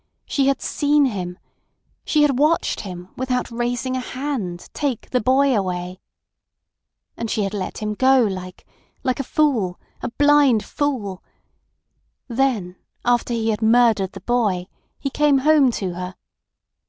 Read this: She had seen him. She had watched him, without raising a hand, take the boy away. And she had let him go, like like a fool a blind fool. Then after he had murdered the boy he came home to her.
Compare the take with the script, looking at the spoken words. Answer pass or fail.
pass